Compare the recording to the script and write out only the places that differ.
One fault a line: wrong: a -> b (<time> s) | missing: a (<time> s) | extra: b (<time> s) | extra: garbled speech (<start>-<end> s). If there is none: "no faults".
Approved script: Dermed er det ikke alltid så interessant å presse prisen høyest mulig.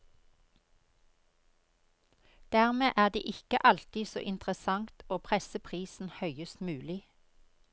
no faults